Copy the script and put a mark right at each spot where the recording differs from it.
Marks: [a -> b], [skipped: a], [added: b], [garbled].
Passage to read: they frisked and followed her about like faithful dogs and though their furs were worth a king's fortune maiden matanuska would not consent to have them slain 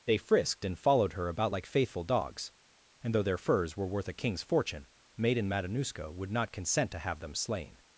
they frisked and followed her about like faithful dogs and though their furs were worth a king's fortune maiden matanuska would not consent to have them slain